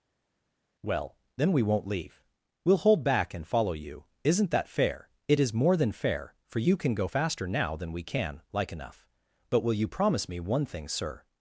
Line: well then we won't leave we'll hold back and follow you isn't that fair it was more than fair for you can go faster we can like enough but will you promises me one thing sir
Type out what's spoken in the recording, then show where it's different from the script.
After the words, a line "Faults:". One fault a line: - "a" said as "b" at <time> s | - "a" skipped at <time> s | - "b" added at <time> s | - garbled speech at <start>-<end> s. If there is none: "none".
well then we won't leave we'll hold back and follow you isn't that fair it is more than fair for you can go faster now than we can like enough but will you promise me one thing sir
Faults:
- "was" said as "is" at 5.4 s
- "now than" added at 7.5 s
- "promises" said as "promise" at 9.9 s